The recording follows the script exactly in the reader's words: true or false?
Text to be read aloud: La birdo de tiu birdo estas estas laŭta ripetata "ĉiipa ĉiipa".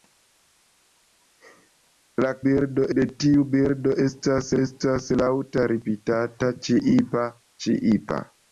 true